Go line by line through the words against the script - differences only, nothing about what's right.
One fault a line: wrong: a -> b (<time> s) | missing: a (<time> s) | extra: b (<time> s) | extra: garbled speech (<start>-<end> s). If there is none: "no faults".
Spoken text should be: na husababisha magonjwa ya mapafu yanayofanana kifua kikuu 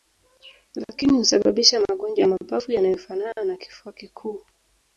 wrong: na -> lakini (0.8 s)
extra: na (3.4 s)